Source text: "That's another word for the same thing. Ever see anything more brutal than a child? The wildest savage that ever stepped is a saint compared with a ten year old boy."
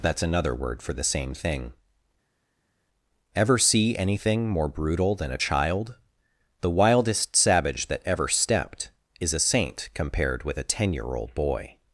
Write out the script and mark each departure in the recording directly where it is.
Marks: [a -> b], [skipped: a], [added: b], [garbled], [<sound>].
"That's another word for the same thing. Ever see anything more brutal than a child? The wildest savage that ever stepped is a saint compared with a ten year old boy."